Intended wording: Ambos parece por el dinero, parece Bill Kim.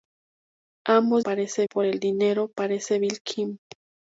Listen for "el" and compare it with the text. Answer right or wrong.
right